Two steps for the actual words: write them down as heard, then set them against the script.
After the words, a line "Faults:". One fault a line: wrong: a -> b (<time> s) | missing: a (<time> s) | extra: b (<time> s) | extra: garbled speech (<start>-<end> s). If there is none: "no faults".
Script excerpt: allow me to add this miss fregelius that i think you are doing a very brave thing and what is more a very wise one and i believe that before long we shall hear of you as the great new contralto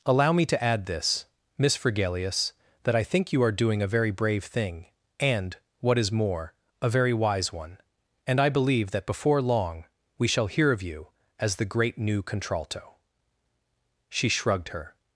allow me to add this miss fregelius that i think you are doing a very brave thing and what is more a very wise one and i believe that before long we shall hear of you as the great new contralto she shrugged her
Faults:
extra: she shrugged her (14.1 s)